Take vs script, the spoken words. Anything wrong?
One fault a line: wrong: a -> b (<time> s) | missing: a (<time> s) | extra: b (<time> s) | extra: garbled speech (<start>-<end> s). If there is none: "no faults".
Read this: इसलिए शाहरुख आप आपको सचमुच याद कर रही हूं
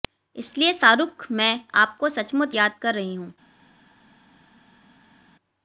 wrong: आप -> मैं (1.3 s)